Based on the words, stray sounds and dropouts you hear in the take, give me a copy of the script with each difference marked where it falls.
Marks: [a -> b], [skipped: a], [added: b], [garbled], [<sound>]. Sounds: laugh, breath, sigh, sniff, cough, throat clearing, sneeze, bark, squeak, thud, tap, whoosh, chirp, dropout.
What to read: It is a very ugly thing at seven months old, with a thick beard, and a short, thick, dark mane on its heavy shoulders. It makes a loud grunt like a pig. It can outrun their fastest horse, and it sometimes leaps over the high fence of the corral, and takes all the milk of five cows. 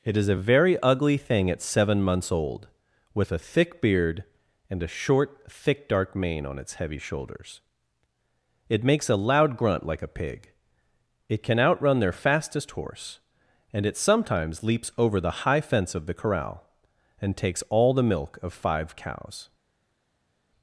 It is a very ugly thing at seven months old, with a thick beard, and a short, thick, dark mane on its heavy shoulders. It makes a loud grunt like a pig. It can outrun their fastest horse, and it sometimes leaps over the high fence of the corral, and takes all the milk of five cows.